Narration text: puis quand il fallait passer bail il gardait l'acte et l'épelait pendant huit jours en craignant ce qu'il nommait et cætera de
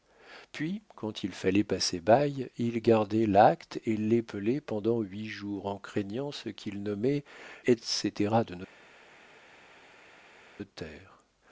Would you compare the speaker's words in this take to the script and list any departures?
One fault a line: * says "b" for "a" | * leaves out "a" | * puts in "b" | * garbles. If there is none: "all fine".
all fine